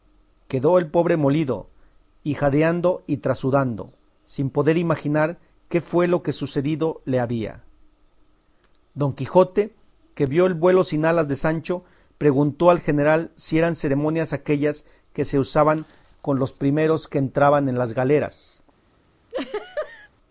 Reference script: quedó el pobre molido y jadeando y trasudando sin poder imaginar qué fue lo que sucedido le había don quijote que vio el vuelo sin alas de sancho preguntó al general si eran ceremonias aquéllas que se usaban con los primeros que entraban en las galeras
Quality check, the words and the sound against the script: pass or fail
fail